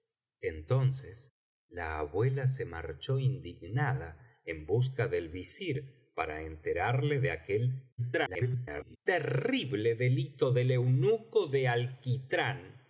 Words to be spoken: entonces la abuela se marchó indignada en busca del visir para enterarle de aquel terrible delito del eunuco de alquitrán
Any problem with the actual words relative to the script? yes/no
yes